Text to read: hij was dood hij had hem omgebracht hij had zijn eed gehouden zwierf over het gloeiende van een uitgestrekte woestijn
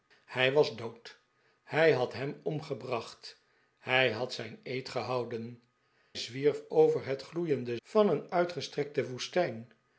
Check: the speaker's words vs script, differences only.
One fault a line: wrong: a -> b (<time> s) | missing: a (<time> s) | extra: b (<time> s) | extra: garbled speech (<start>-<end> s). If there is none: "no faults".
no faults